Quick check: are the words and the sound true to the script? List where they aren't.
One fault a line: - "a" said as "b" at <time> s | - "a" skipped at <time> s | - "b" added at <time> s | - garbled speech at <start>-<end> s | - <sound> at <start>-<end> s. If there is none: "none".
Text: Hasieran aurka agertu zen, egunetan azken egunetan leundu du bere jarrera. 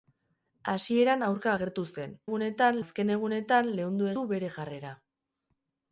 none